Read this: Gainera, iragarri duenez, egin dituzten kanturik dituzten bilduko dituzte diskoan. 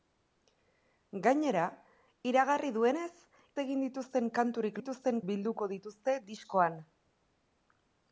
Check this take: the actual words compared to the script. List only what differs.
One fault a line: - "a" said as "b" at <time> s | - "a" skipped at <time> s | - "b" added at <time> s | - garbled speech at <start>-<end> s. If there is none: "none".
none